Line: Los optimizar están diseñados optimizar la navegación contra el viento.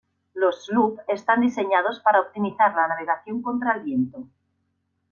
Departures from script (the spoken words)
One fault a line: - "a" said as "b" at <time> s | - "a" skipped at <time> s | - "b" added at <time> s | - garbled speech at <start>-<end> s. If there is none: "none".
- "optimizar" said as "sloop" at 0.6 s
- "para" added at 2.0 s